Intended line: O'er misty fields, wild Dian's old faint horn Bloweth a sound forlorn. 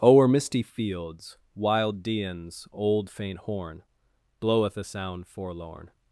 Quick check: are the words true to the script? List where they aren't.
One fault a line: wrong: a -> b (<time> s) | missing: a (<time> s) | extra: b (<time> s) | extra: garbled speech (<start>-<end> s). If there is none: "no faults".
no faults